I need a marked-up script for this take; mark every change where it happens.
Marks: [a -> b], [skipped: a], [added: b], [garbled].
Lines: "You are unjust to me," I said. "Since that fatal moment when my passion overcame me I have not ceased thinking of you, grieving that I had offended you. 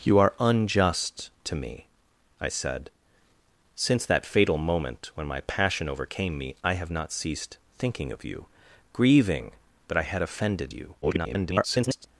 "You are unjust to me," I said. "Since that fatal moment when my passion overcame me I have not ceased thinking of you, grieving that I had offended you. [garbled]